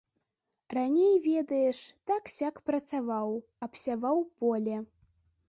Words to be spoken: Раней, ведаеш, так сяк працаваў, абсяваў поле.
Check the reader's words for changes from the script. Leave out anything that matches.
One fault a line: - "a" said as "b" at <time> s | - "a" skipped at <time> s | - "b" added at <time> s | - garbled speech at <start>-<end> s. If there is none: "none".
none